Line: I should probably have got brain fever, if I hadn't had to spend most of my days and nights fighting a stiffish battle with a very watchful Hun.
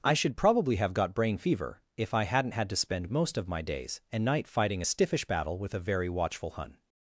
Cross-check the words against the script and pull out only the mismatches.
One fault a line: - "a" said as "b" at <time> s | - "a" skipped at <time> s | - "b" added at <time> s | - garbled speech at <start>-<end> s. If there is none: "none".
- "nights" said as "night" at 4.2 s